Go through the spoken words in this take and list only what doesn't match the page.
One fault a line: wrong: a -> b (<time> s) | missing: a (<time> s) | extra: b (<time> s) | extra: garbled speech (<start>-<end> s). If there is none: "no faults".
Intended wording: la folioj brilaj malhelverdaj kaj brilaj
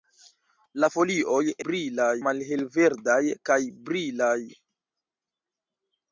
no faults